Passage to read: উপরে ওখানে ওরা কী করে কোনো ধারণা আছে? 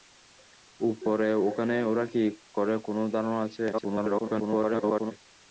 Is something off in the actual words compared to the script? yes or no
yes